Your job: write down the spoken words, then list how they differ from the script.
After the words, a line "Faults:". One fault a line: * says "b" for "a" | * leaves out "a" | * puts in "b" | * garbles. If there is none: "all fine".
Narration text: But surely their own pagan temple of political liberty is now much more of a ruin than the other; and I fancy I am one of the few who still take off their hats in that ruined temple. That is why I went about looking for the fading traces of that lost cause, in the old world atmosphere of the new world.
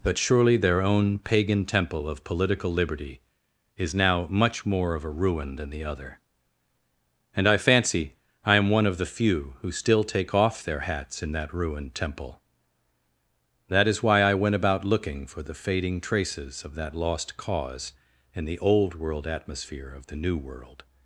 But surely their own pagan temple of political liberty is now much more of a ruin than the other; and I fancy I am one of the few who still take off their hats in that ruined temple. That is why I went about looking for the fading traces of that lost cause, in the old world atmosphere of the new world.
Faults:
all fine